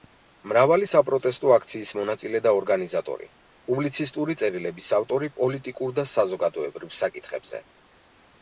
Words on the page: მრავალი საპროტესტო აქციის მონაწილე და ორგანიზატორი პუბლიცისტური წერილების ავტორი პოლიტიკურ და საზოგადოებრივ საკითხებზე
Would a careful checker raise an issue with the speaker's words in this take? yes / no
no